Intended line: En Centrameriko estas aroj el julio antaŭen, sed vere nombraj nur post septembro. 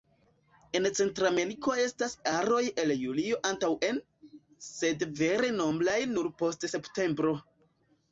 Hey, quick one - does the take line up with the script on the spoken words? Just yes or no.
yes